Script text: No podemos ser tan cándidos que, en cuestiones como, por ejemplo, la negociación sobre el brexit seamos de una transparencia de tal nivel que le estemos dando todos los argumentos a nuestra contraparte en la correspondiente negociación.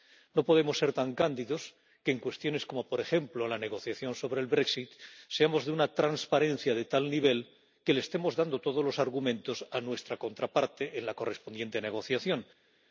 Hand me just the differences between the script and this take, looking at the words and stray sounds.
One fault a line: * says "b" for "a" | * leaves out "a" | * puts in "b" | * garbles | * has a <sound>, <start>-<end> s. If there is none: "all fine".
all fine